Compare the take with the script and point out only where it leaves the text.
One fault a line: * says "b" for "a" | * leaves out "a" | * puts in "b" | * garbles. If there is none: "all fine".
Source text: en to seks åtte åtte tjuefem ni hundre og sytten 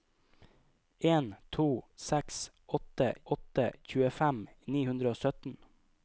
all fine